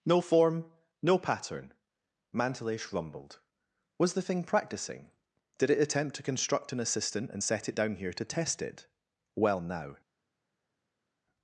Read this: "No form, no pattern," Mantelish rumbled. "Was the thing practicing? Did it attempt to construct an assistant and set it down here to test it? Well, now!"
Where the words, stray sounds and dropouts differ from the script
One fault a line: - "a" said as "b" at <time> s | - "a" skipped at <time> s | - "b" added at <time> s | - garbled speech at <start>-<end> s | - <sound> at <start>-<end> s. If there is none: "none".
none